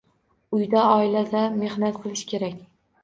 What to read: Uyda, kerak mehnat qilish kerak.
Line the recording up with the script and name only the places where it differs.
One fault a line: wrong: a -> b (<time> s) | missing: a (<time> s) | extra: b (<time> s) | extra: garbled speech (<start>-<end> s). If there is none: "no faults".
wrong: kerak -> oilada (0.9 s)